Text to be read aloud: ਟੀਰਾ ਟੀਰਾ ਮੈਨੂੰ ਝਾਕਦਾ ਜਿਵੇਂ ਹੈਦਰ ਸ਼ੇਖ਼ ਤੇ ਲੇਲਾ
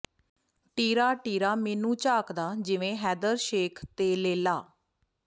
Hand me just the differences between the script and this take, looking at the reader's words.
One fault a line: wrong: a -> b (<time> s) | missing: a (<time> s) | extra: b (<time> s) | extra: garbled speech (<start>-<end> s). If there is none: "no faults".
no faults